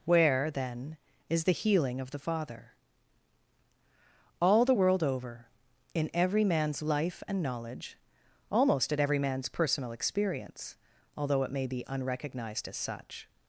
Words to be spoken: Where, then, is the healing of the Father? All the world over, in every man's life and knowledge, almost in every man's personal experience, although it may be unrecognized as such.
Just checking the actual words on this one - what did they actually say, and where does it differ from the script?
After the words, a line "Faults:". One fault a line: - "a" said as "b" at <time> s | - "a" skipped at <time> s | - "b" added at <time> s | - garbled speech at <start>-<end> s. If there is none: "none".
Where, then, is the healing of the Father? All the world over, in every man's life and knowledge, almost at every man's personal experience, although it may be unrecognized as such.
Faults:
- "in" said as "at" at 8.9 s